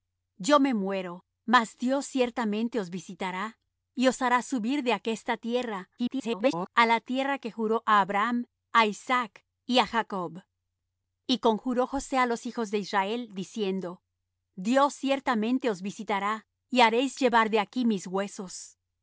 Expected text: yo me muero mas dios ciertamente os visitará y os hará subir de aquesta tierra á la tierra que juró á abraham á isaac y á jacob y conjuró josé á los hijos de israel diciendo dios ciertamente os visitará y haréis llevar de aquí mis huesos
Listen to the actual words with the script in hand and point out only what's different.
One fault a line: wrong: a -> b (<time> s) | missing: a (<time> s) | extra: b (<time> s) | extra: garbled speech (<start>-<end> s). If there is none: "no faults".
extra: garbled speech (6.0-6.7 s)